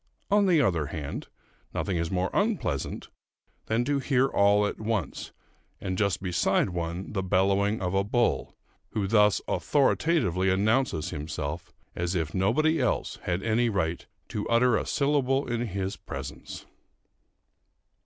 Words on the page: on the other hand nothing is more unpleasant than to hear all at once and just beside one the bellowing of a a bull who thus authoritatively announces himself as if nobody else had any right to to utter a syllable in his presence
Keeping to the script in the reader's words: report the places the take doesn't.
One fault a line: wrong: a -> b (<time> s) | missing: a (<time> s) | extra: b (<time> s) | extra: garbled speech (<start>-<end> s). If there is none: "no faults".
missing: a (8.0 s)
missing: to (14.5 s)